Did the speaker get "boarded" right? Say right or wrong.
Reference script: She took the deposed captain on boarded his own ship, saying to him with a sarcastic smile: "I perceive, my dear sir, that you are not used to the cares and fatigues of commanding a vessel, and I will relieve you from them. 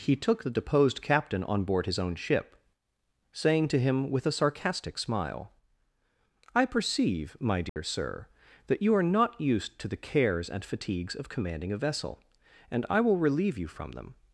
wrong